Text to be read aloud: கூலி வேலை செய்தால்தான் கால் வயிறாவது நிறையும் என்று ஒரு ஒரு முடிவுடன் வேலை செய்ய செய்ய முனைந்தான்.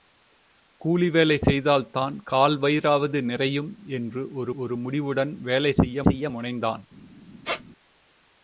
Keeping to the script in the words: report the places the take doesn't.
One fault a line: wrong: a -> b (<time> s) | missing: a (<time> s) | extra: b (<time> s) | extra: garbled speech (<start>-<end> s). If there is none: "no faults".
no faults